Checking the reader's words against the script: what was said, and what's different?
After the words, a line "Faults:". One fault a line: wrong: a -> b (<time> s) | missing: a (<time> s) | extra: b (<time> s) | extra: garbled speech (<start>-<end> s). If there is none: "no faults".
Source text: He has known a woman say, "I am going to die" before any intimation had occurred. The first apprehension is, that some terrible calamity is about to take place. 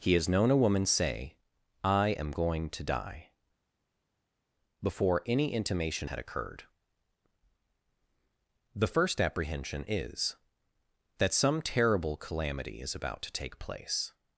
He has known a woman say, "I am going to die" before any intimation had occurred. The first apprehension is, that some terrible calamity is about to take place.
Faults:
no faults